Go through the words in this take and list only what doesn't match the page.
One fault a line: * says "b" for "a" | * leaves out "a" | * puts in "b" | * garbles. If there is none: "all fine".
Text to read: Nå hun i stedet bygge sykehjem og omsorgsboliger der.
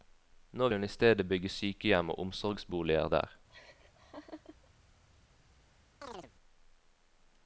all fine